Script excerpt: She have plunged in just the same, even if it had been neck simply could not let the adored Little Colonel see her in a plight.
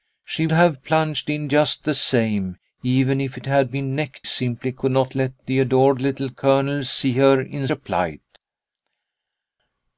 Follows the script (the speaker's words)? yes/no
yes